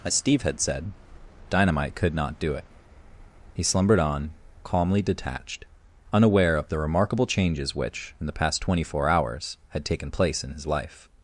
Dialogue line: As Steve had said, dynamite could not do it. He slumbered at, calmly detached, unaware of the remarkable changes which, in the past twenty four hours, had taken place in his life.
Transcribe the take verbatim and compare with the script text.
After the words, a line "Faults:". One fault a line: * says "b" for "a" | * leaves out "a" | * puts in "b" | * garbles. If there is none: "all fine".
As Steve had said, dynamite could not do it. He slumbered on, calmly detached, unaware of the remarkable changes which, in the past twenty four hours, had taken place in his life.
Faults:
* says "on" for "at"